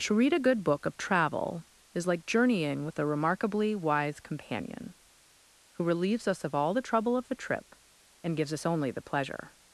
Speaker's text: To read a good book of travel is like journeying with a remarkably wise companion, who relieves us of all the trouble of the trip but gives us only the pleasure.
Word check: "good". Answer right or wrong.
right